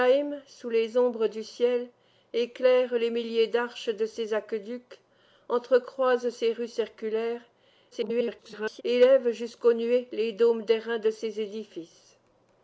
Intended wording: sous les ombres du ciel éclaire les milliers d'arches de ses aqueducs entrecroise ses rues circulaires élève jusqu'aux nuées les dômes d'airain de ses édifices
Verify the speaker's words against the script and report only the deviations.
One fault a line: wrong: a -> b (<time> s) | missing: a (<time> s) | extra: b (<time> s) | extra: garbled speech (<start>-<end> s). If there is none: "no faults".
extra: garbled speech (7.9-8.8 s)